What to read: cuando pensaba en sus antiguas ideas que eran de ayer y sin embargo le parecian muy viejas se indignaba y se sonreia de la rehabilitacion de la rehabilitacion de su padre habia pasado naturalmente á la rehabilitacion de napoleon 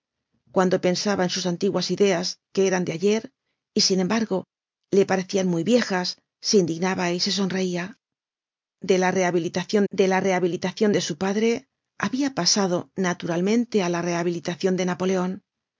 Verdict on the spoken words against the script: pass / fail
pass